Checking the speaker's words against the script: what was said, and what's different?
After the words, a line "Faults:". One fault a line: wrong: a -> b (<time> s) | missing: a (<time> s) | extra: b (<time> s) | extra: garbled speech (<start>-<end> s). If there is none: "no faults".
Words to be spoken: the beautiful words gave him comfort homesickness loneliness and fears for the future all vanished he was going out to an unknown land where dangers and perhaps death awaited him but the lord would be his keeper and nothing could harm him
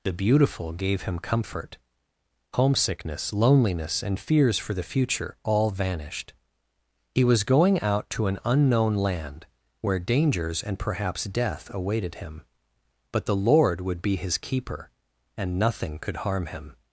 the beautiful gave him comfort homesickness loneliness and fears for the future all vanished he was going out to an unknown land where dangers and perhaps death awaited him but the lord would be his keeper and nothing could harm him
Faults:
missing: words (0.7 s)